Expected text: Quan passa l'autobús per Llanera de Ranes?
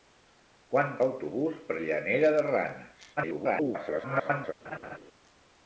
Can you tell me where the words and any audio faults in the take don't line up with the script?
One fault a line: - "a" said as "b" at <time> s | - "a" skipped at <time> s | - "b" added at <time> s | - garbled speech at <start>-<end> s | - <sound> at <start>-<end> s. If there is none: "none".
- "passa" skipped at 0.9 s
- garbled speech at 3.2-4.5 s
- laugh at 4.6-5.0 s